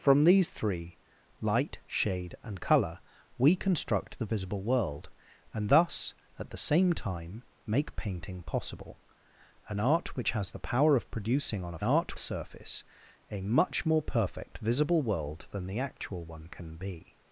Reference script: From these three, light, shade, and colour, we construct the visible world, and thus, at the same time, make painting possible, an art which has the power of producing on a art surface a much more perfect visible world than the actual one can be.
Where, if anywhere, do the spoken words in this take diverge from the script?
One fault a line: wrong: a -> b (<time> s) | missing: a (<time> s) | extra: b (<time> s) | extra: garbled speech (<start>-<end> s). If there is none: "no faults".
no faults